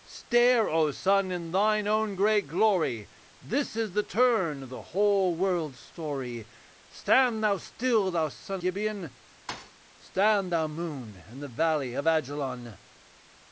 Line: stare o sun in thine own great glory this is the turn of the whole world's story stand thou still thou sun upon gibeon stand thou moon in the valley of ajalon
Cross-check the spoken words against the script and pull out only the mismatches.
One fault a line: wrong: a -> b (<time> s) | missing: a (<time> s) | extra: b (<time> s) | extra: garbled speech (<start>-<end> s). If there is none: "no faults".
missing: upon (8.6 s)